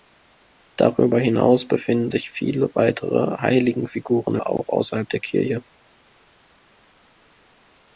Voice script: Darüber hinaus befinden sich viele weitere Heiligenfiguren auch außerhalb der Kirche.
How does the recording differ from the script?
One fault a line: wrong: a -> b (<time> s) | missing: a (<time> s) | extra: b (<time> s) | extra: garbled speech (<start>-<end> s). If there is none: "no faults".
no faults